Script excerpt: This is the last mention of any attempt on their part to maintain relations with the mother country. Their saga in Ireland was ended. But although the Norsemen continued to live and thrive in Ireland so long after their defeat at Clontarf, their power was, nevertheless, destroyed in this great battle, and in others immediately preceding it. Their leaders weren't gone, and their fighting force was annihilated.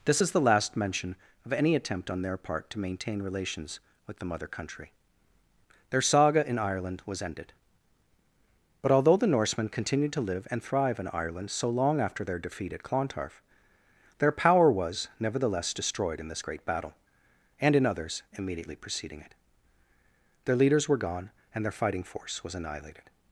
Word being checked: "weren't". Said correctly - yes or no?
no